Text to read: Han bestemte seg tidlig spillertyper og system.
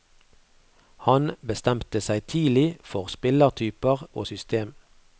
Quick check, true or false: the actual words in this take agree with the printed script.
false